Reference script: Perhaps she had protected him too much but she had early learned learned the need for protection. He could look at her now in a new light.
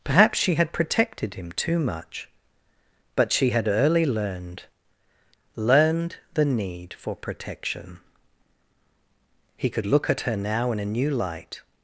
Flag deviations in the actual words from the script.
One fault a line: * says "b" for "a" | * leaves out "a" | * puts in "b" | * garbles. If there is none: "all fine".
all fine